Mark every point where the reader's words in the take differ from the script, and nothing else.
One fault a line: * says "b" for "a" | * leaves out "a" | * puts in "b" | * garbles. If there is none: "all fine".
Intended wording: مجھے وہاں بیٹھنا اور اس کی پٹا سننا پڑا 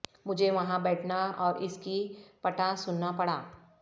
all fine